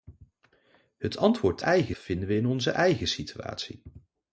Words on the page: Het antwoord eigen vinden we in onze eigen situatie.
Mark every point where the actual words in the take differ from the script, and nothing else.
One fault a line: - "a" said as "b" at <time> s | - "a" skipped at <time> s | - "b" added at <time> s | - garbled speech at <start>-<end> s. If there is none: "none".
none